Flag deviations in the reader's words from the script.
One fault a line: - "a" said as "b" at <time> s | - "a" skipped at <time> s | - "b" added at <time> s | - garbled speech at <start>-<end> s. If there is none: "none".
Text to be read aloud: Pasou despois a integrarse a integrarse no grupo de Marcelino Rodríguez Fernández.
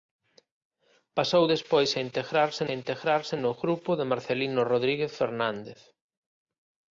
none